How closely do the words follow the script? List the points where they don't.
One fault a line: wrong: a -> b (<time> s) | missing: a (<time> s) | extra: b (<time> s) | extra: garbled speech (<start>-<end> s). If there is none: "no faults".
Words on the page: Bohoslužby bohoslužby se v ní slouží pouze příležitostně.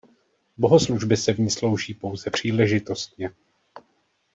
missing: bohoslužby (1.2 s)